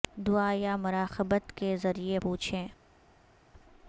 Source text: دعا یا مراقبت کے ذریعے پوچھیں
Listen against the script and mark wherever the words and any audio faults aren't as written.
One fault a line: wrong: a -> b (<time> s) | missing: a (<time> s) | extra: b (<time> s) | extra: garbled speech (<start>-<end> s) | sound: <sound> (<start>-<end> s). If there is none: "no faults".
no faults